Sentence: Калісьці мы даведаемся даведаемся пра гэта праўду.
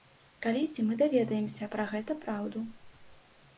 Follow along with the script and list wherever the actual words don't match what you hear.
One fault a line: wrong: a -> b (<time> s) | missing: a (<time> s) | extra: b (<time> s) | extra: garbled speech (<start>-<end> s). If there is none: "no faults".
missing: даведаемся (1.7 s)